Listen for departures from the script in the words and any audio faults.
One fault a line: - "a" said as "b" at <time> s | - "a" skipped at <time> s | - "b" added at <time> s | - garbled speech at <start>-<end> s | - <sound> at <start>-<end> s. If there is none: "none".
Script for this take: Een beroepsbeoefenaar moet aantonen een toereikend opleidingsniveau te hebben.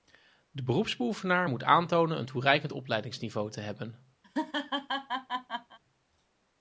- "Een" said as "De" at 0.5 s
- laugh at 4.2-5.8 s